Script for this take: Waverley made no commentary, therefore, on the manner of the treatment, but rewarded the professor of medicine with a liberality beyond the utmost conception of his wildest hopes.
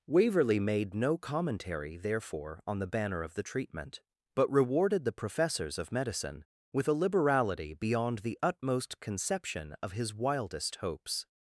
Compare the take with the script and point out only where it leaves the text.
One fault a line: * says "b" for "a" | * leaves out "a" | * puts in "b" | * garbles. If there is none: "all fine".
* says "banner" for "manner"
* says "professors" for "professor"